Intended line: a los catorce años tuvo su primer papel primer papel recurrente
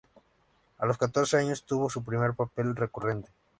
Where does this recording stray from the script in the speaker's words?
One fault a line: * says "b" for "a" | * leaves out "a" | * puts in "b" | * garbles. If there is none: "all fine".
* leaves out "primer papel"